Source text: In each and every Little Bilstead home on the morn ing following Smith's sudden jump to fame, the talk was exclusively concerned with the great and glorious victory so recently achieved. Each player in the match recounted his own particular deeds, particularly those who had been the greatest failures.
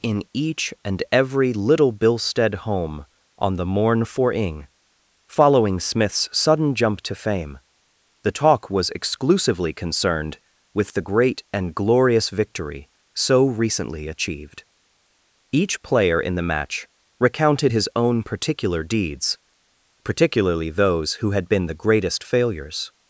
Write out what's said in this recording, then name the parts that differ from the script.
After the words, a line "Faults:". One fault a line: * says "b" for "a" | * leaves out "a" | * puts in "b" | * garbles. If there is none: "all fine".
In each and every Little Bilstead home on the morn for ing following Smith's sudden jump to fame, the talk was exclusively concerned with the great and glorious victory so recently achieved. Each player in the match recounted his own particular deeds, particularly those who had been the greatest failures.
Faults:
* puts in "for"